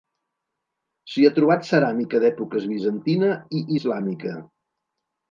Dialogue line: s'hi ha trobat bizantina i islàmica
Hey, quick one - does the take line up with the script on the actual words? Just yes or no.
no